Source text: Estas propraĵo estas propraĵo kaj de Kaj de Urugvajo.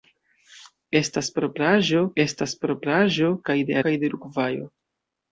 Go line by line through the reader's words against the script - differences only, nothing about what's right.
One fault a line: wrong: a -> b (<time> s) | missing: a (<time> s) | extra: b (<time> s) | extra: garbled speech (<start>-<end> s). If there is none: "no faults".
no faults